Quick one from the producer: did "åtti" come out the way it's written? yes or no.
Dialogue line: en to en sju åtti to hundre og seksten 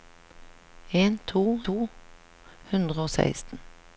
no